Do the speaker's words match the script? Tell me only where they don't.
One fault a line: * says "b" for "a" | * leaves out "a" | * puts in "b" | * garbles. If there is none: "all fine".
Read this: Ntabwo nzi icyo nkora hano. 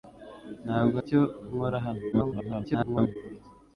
* leaves out "nzi"
* garbles